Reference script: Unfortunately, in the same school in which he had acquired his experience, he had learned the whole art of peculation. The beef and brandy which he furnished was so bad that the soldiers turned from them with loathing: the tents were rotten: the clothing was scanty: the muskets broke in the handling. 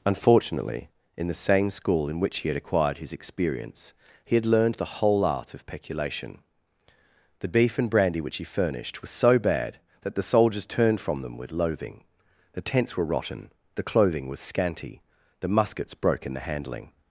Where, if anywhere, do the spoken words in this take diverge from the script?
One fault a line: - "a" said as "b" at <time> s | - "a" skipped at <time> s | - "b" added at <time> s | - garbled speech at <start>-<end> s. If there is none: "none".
none